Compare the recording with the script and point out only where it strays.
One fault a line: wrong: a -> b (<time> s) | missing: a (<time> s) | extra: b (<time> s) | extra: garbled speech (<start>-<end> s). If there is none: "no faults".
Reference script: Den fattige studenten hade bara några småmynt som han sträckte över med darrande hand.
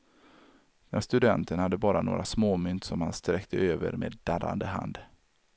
missing: fattige (1.0 s)